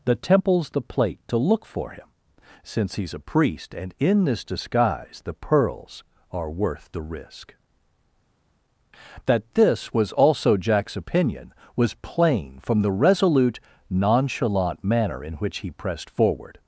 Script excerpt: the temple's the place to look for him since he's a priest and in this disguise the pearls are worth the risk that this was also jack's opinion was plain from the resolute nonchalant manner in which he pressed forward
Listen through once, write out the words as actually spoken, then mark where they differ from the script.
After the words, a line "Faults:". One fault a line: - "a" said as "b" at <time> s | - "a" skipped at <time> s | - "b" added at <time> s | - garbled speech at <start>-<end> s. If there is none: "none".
the temple's the plate to look for him since he's a priest and in this disguise the pearls are worth the risk that this was also jack's opinion was plain from the resolute nonchalant manner in which he pressed forward
Faults:
- "place" said as "plate" at 0.8 s